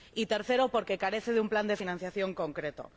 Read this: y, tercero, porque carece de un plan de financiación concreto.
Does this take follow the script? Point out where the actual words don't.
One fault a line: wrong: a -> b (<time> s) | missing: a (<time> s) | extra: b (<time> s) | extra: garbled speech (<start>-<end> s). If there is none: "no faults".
no faults